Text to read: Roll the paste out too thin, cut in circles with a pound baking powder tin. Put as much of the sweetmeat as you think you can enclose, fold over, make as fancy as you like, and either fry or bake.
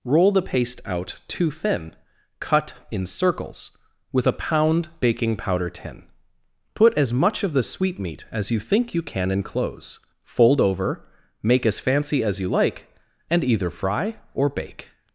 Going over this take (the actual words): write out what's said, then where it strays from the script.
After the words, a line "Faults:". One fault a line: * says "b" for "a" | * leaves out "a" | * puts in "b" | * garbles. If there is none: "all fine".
Roll the paste out too thin, cut in circles with a pound baking powder tin. Put as much of the sweetmeat as you think you can enclose, fold over, make as fancy as you like, and either fry or bake.
Faults:
all fine